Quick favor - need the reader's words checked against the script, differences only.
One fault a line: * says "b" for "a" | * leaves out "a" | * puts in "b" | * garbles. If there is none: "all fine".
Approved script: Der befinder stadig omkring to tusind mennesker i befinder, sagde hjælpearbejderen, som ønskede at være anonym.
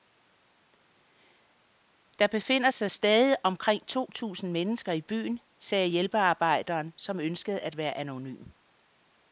* puts in "sig"
* says "byen" for "befinder"